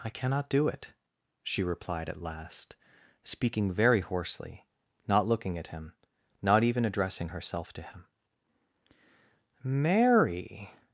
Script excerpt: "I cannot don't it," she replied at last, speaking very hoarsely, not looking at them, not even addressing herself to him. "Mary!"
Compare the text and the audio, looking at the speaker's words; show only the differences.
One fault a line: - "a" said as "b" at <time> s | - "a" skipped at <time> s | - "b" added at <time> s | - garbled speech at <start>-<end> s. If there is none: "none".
- "don't" said as "do" at 0.5 s
- "them" said as "him" at 5.7 s